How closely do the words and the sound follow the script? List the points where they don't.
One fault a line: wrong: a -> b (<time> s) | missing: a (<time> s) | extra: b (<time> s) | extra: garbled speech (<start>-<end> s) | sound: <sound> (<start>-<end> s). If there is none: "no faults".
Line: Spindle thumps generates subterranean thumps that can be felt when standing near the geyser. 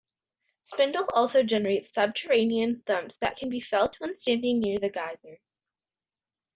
wrong: thumps -> also (1.1 s)